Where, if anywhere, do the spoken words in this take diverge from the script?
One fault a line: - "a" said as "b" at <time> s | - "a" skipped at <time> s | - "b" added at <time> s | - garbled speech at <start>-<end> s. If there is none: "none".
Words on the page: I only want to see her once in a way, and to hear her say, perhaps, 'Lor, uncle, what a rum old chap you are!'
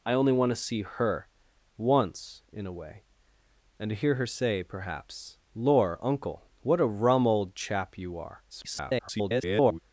- garbled speech at 8.5-9.8 s